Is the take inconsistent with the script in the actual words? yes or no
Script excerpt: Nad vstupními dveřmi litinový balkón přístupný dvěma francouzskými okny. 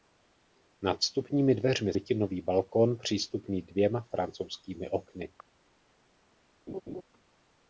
no